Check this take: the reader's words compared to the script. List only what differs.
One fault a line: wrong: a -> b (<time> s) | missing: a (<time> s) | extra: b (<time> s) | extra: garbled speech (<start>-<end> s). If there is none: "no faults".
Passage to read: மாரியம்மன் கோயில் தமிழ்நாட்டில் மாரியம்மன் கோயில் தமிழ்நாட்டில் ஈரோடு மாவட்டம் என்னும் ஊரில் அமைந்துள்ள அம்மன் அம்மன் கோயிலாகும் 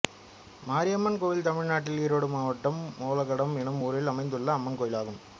missing: மாரியம்மன் கோயில் தமிழ்நாட்டில் (2.0 s)
extra: ஒலகடம் (3.1 s)
missing: அம்மன் (4.8 s)